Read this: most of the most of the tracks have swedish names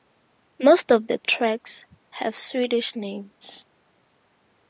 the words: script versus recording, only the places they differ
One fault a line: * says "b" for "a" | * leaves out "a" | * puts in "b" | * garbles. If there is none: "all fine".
* leaves out "most of the"